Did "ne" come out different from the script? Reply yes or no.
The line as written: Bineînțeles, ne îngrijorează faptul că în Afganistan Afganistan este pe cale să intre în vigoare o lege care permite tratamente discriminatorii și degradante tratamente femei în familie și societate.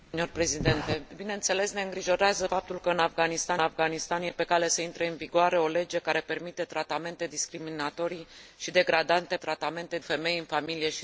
no